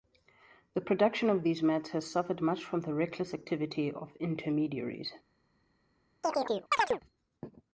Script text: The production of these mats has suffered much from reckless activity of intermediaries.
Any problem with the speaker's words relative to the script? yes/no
yes